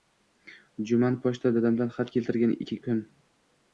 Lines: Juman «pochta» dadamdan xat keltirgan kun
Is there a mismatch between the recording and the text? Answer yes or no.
no